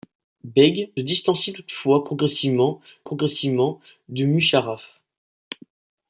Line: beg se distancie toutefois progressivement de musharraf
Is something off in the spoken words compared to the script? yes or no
yes